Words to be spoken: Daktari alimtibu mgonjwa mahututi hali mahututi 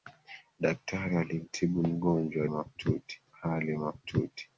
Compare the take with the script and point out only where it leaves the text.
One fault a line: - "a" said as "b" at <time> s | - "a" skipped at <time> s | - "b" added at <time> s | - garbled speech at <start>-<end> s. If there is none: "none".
none